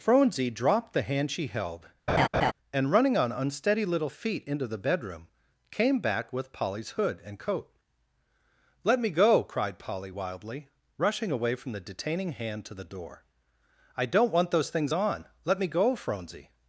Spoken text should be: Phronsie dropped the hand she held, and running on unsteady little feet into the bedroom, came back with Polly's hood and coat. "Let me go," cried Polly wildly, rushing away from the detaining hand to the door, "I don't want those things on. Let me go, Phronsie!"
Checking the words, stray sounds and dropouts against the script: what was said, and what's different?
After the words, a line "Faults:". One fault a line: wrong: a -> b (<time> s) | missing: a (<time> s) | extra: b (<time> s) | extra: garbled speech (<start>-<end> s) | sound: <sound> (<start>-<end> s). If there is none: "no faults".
Phronsie dropped the hand she held, and running on unsteady little feet into the bedroom, came back with Polly's hood and coat. "Let me go," cried Polly wildly, rushing away from the detaining hand to the door, "I don't want those things on. Let me go, Phronsie!"
Faults:
sound: laugh (2.1-2.5 s)